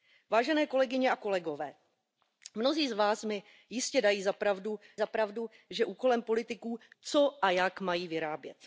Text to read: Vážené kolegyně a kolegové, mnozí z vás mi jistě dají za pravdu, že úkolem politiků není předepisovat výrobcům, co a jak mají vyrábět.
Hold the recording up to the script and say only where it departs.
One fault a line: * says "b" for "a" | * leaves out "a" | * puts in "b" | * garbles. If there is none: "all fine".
* puts in "za pravdu"
* leaves out "není předepisovat výrobcům"